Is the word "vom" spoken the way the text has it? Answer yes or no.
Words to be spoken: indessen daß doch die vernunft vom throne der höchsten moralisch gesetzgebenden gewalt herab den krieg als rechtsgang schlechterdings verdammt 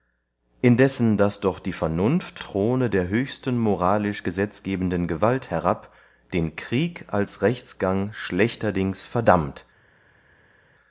no